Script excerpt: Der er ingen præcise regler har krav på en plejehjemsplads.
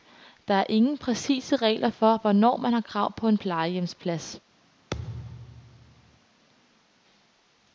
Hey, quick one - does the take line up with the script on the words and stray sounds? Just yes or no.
no